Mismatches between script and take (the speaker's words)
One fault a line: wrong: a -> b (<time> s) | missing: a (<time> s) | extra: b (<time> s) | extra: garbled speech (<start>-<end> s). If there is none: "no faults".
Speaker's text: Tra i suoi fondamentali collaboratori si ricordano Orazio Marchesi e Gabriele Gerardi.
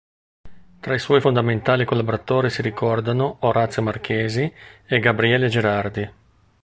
no faults